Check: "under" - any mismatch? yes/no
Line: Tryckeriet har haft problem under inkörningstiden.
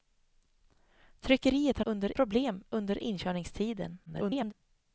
no